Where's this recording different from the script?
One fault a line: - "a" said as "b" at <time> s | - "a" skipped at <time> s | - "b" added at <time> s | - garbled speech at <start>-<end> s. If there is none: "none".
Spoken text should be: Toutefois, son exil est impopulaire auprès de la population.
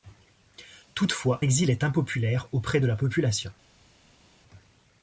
- "son" skipped at 1.4 s